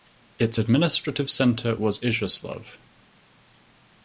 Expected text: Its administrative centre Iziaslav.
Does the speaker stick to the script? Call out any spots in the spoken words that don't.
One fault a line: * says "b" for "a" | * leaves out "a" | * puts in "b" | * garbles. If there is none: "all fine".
* puts in "was"